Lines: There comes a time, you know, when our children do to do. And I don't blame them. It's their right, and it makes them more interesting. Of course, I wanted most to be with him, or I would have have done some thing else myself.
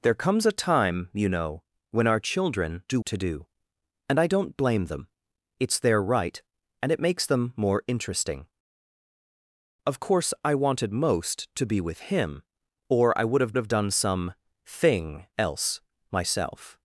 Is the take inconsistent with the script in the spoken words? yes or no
no